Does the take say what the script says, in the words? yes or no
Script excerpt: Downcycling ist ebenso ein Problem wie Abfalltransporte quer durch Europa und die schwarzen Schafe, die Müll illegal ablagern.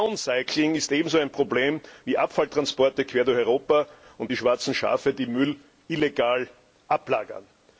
yes